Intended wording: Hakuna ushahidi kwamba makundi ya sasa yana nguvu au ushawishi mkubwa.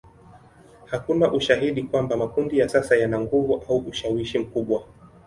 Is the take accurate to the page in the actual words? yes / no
yes